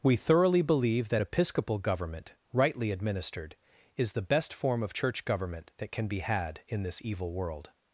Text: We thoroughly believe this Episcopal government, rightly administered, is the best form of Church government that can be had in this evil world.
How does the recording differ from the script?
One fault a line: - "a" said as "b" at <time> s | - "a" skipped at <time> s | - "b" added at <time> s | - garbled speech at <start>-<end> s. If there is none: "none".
- "this" said as "that" at 1.1 s